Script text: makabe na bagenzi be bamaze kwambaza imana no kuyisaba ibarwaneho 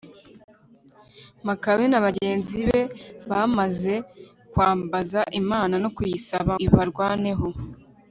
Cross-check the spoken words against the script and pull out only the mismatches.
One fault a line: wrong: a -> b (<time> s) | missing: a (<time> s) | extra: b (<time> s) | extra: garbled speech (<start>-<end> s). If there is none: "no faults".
no faults